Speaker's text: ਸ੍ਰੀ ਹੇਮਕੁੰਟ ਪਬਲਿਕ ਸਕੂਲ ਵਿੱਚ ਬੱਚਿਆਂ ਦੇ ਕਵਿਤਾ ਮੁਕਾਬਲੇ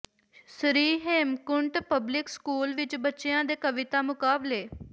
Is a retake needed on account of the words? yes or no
no